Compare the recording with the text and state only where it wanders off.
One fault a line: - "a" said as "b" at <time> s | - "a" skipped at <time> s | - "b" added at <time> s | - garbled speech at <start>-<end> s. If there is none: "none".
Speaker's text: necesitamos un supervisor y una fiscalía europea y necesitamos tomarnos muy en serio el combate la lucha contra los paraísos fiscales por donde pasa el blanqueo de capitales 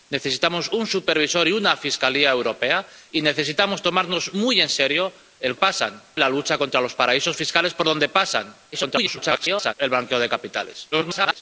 - "combate" said as "pasa" at 5.5 s
- garbled speech at 8.7-9.7 s
- garbled speech at 10.9-11.4 s